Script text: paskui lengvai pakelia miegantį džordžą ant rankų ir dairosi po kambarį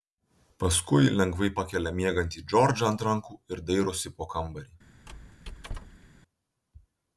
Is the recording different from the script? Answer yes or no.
no